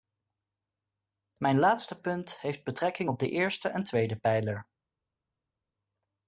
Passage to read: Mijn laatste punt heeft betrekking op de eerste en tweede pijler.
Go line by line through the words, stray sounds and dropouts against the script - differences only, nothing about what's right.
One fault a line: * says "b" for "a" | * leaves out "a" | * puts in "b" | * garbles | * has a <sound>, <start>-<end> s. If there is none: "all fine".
all fine